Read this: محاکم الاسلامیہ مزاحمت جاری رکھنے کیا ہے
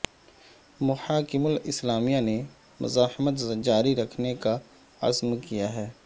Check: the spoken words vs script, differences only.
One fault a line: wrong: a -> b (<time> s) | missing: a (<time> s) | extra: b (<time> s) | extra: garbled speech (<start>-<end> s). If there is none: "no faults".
extra: نے (2.2 s)
extra: کا عزم (4.3 s)